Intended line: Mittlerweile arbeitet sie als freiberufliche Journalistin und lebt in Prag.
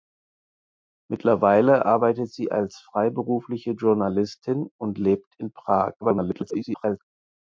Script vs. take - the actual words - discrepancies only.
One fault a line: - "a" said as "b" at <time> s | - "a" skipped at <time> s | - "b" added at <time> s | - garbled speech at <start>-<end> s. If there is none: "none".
- garbled speech at 6.0-7.0 s